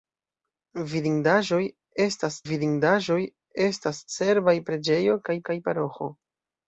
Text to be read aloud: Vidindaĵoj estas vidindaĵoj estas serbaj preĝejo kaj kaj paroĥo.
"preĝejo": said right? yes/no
yes